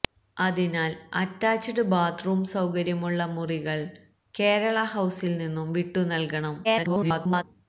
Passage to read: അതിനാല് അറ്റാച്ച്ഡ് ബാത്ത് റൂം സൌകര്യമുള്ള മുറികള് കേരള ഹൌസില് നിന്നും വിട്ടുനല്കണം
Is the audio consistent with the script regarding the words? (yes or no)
no